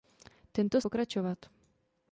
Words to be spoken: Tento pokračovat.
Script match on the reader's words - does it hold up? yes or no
yes